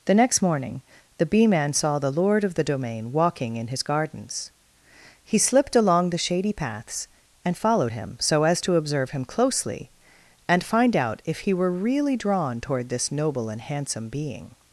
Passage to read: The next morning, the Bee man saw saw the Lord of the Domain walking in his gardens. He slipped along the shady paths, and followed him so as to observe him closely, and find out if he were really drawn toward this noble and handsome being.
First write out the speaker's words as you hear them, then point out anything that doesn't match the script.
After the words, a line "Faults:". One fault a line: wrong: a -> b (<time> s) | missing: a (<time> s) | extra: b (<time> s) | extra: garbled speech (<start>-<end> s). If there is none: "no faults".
The next morning, the Bee man saw the Lord of the Domain walking in his gardens. He slipped along the shady paths, and followed him so as to observe him closely, and find out if he were really drawn toward this noble and handsome being.
Faults:
missing: saw (2.0 s)